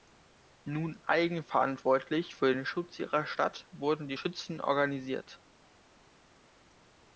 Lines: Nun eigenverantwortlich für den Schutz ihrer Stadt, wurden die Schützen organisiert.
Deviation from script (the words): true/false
false